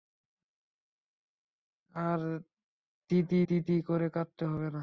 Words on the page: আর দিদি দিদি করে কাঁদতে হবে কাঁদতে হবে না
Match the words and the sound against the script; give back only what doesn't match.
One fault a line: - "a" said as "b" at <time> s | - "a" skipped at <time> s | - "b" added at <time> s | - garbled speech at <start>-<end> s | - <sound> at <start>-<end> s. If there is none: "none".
- "কাঁদতে হবে" skipped at 4.7 s